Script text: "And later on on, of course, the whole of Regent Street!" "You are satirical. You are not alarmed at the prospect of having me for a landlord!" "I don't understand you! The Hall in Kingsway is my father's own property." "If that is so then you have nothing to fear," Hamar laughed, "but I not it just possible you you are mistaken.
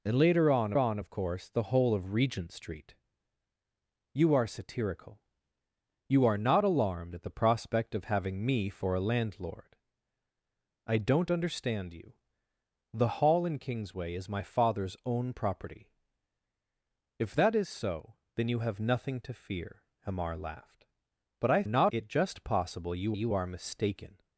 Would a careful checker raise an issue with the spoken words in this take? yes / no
no